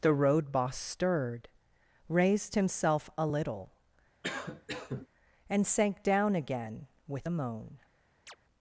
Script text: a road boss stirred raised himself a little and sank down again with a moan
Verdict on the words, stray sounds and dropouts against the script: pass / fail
fail